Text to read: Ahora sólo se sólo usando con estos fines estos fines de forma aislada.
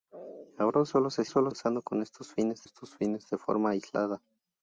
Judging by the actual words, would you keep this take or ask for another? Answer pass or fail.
pass